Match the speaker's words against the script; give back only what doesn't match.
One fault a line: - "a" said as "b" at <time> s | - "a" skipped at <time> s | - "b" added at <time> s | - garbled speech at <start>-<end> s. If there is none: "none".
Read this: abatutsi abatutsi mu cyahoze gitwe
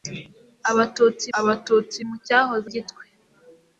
none